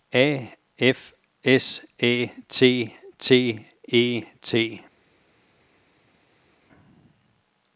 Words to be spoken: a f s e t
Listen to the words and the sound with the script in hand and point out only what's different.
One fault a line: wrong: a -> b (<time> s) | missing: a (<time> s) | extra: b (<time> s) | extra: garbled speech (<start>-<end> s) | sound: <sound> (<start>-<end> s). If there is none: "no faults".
extra: æ t t (2.0 s)